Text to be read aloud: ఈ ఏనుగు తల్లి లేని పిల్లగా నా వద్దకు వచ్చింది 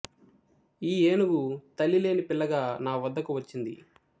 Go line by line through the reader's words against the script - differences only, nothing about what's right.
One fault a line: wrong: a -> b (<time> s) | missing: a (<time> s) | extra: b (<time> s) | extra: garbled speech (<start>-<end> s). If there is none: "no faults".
no faults